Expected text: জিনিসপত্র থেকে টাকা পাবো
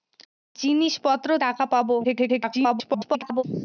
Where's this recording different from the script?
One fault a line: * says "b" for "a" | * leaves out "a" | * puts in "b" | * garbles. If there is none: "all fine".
* leaves out "থেকে"
* garbles